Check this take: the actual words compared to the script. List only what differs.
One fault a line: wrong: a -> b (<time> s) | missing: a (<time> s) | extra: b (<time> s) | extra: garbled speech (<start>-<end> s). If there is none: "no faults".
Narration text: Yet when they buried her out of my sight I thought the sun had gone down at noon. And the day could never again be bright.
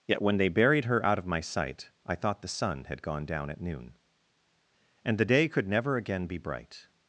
no faults